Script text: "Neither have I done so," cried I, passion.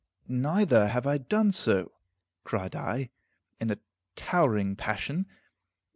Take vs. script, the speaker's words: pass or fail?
fail